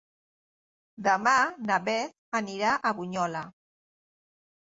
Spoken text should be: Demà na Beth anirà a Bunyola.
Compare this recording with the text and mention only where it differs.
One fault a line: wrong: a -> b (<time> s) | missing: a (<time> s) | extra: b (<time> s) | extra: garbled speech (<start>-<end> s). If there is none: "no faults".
no faults